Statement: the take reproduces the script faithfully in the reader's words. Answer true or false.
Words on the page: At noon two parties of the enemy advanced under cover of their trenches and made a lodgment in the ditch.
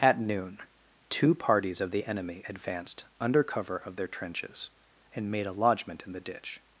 true